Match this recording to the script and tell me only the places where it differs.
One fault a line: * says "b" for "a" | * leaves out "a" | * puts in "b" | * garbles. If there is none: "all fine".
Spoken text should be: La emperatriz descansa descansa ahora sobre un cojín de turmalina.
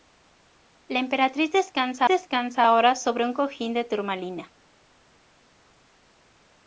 all fine